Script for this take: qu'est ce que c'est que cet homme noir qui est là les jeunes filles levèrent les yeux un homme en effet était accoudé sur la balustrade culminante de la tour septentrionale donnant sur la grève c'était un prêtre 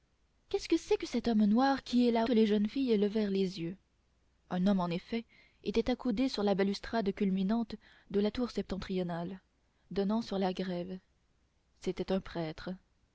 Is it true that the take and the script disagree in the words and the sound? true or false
false